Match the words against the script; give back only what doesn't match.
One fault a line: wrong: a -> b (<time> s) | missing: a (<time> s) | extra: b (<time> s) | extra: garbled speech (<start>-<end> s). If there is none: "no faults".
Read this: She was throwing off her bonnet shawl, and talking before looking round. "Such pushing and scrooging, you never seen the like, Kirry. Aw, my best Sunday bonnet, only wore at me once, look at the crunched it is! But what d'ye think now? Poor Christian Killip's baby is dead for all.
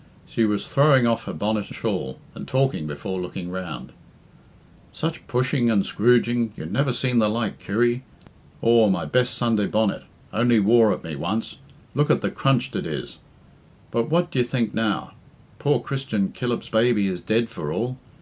no faults